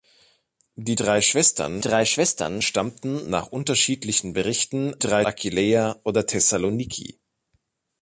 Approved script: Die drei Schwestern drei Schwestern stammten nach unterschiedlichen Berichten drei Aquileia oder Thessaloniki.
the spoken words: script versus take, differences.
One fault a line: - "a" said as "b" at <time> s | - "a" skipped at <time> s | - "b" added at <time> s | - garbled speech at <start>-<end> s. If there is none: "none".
none